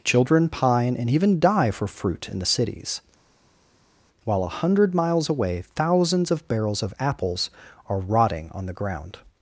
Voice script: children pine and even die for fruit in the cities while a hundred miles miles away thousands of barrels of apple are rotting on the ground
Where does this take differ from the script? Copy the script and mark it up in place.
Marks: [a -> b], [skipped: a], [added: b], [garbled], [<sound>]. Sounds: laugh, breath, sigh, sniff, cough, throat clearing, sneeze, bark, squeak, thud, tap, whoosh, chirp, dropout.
children pine and even die for fruit in the cities while a hundred miles [skipped: miles] away thousands of barrels of [apple -> apples] are rotting on the ground